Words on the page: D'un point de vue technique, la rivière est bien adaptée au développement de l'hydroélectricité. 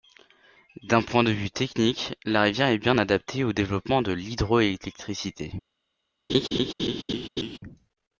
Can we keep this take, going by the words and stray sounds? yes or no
no